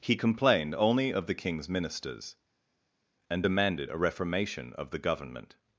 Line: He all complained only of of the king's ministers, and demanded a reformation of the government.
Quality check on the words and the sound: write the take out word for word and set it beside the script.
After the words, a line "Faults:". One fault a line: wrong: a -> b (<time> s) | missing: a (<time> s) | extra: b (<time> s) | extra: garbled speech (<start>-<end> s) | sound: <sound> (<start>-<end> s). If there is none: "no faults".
He complained only of the king's ministers, and demanded a reformation of the government.
Faults:
missing: all (0.1 s)
missing: of (1.3 s)